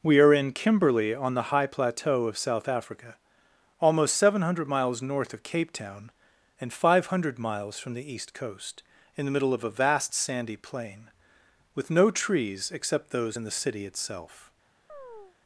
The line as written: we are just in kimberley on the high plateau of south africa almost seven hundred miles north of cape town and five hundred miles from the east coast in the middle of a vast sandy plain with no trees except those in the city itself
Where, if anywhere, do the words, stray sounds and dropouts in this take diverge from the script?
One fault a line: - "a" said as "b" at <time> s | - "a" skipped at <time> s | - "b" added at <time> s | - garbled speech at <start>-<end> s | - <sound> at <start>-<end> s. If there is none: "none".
- "just" skipped at 0.3 s
- chirp at 14.9-15.4 s